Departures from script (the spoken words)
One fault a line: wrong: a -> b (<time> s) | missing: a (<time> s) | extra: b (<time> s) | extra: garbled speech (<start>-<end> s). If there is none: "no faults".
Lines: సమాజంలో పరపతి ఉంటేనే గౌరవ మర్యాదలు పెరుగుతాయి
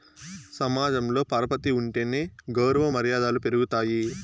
no faults